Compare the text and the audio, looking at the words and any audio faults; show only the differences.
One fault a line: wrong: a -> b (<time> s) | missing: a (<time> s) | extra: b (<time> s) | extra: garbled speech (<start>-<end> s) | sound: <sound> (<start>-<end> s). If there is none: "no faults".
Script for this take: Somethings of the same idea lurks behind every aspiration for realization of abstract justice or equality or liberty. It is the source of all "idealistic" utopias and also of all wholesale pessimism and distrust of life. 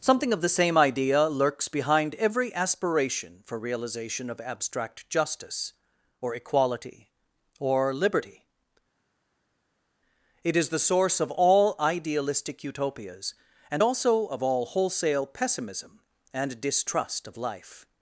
wrong: Somethings -> Something (0.0 s)